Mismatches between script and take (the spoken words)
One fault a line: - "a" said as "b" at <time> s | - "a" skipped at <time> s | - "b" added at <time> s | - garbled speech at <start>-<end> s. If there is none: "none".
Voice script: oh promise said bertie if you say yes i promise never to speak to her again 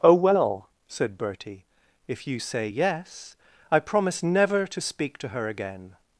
- "promise" said as "well" at 0.1 s